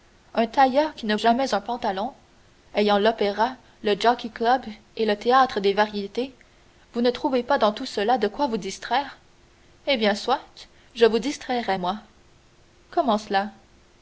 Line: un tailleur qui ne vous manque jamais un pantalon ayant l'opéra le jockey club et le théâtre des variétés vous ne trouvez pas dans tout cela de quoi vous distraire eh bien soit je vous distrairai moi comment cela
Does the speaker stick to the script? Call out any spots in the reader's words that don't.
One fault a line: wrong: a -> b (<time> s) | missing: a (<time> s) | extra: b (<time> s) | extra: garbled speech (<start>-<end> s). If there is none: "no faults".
missing: vous manque (1.1 s)